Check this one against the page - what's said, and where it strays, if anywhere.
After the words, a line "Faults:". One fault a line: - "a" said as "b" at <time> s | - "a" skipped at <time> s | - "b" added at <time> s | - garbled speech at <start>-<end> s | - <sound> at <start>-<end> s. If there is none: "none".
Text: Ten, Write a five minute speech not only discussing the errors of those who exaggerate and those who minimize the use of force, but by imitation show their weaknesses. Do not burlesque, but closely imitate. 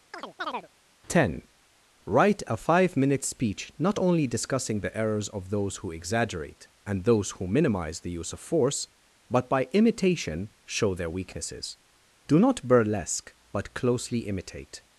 Ten, Write a five minute speech not only discussing the errors of those who exaggerate and those who minimize the use of force, but by imitation show their weaknesses. Do not burlesque, but closely imitate.
Faults:
- chirp at 0.1-0.7 s